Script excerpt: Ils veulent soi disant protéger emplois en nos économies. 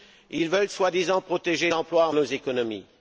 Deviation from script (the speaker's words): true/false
false